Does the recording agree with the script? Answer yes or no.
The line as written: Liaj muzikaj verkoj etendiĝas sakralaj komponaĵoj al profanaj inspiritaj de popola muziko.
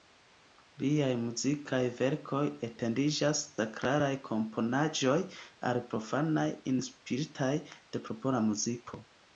yes